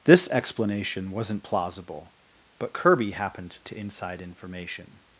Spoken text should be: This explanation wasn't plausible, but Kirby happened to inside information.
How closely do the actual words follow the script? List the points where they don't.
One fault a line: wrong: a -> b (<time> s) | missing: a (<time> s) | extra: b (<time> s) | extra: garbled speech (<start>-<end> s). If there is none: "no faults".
no faults